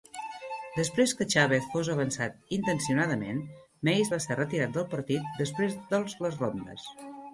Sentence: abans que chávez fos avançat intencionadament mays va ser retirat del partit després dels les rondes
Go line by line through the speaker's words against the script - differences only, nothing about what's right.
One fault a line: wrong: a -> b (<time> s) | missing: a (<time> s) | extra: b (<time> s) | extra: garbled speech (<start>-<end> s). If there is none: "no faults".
wrong: abans -> després (0.8 s)